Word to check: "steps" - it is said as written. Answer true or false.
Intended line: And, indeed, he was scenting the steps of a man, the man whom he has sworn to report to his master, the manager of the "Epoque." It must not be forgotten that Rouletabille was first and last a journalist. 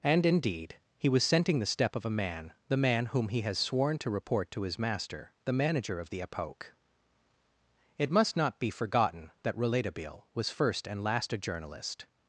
false